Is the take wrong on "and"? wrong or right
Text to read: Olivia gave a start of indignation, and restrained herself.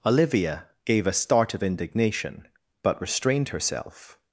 wrong